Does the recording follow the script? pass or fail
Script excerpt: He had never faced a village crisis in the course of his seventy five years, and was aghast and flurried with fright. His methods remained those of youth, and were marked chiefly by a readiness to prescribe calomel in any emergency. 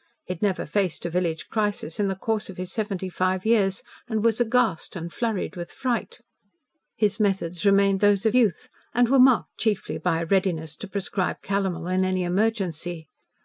pass